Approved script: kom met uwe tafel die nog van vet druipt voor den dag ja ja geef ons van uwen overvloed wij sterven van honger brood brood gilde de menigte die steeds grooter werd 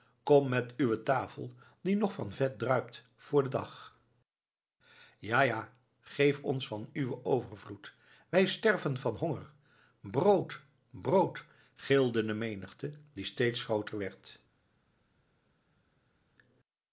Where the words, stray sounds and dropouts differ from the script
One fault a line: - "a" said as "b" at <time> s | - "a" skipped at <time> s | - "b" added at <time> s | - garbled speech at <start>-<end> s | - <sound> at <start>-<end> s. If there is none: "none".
none